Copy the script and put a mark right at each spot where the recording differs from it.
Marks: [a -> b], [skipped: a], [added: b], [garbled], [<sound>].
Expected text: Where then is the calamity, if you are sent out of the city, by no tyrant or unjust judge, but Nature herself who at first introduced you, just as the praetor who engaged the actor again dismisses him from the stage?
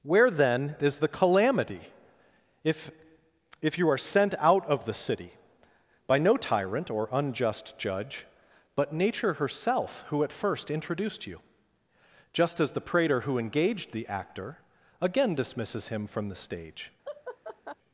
Where then is the calamity, if [added: if] you are sent out of the city, by no tyrant or unjust judge, but Nature herself who at first introduced you, just as the praetor who engaged the actor again dismisses him from the stage? [laugh]